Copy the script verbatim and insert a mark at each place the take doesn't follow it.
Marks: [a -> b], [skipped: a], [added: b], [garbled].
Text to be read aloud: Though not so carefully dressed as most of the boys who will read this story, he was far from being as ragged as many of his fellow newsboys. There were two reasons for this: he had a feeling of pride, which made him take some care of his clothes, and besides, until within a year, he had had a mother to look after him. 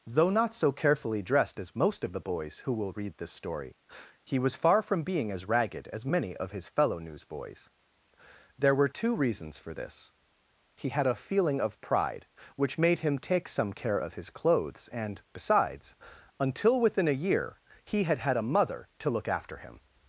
Though not so carefully dressed as most of the boys who will read this story, he was far from being as ragged as many of his fellow newsboys. There were two reasons for this: he had a feeling of pride, which made him take some care of his clothes, and besides, until within a year, he had had a mother to look after him.